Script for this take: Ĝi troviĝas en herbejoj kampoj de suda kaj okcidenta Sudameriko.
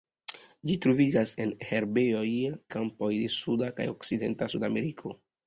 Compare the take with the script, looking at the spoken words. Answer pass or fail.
pass